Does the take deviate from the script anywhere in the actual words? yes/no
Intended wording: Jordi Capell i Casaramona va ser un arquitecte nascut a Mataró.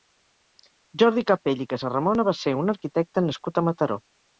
no